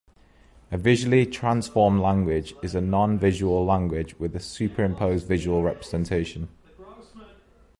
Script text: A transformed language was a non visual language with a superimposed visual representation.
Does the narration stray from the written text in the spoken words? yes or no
yes